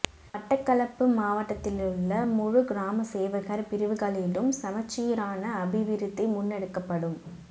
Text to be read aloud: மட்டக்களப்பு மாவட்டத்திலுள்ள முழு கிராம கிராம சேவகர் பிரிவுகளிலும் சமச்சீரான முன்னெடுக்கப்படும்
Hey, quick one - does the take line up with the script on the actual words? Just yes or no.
no